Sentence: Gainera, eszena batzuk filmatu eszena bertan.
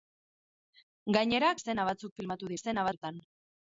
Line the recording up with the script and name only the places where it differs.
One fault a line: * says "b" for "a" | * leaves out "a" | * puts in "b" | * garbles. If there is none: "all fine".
all fine